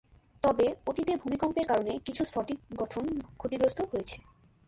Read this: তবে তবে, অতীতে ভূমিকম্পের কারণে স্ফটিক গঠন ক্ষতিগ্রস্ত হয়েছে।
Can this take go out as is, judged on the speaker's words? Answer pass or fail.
fail